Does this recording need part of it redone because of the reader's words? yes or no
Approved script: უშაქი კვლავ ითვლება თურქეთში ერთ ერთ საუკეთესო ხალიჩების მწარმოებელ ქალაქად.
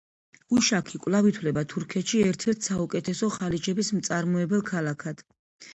no